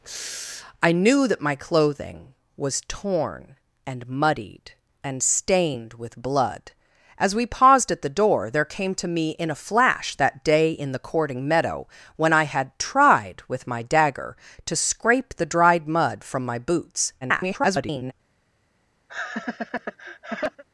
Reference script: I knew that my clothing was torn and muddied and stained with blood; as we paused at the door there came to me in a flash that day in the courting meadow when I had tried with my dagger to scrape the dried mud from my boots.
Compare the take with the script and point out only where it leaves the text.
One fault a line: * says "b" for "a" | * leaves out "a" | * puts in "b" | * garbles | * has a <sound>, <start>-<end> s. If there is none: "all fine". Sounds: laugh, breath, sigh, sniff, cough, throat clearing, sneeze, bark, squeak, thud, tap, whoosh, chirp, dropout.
* garbles
* has a laugh, 19.1-20.6 s